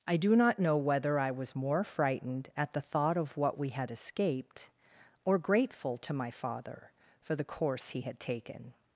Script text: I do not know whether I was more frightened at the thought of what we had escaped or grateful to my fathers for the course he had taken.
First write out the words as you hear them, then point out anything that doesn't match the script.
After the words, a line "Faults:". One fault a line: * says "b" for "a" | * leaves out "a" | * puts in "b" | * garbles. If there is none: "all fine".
I do not know whether I was more frightened at the thought of what we had escaped or grateful to my father for the course he had taken.
Faults:
* says "father" for "fathers"